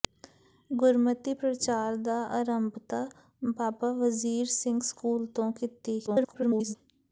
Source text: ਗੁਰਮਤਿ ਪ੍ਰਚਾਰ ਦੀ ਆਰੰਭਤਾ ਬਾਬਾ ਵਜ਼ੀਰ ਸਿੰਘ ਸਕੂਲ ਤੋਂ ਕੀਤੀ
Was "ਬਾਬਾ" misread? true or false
false